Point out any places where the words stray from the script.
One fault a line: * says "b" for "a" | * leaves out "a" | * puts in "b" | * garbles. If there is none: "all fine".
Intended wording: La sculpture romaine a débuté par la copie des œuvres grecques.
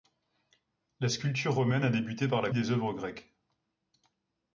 * leaves out "copie"